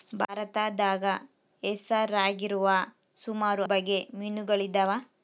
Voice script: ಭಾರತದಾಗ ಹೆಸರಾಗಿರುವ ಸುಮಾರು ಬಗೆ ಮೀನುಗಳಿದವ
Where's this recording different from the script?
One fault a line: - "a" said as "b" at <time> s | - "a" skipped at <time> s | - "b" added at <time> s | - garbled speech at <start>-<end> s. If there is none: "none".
none